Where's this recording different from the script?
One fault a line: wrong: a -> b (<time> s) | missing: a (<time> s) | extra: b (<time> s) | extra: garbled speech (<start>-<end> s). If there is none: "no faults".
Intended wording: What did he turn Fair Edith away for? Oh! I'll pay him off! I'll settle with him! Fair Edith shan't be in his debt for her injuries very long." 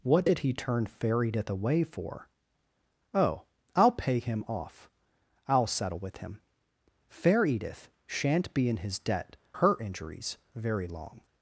missing: for (9.3 s)